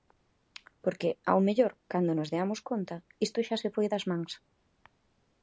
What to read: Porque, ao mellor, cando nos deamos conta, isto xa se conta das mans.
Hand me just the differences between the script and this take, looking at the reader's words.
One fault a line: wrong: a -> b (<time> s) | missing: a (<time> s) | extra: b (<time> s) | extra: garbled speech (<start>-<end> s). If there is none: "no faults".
wrong: conta -> foi (3.8 s)